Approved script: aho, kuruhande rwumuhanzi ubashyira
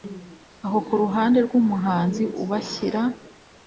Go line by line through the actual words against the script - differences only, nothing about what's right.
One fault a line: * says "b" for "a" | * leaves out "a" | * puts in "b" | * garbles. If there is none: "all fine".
all fine